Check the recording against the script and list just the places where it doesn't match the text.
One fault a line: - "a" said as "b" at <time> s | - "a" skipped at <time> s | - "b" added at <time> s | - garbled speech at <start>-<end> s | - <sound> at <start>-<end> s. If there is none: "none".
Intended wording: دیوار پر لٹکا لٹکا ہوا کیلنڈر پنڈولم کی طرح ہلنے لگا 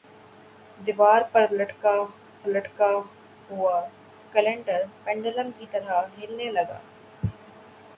none